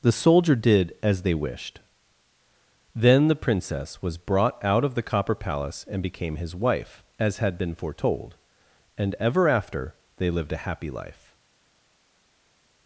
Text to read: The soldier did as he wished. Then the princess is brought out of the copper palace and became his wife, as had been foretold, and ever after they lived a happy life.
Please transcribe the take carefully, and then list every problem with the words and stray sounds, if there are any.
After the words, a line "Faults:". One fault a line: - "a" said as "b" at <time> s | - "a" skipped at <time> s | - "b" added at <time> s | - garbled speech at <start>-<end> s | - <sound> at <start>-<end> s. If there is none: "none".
The soldier did as they wished. Then the princess was brought out of the copper palace and became his wife, as had been foretold, and ever after they lived a happy life.
Faults:
- "he" said as "they" at 1.2 s
- "is" said as "was" at 4.0 s